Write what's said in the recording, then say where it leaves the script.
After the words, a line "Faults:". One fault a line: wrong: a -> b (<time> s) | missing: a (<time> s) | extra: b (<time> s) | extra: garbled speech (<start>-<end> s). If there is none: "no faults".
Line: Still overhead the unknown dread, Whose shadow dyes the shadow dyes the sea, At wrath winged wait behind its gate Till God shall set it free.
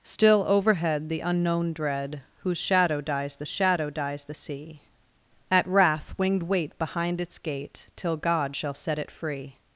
Still overhead the unknown dread, Whose shadow dyes the shadow dyes the sea, At wrath winged wait behind its gate Till God shall set it free.
Faults:
no faults